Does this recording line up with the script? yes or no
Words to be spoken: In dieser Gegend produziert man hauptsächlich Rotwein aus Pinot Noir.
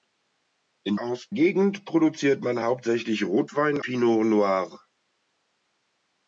no